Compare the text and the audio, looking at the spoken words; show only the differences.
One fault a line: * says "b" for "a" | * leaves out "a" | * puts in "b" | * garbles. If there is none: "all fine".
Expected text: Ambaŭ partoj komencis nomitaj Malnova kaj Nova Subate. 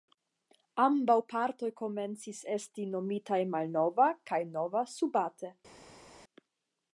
* puts in "esti"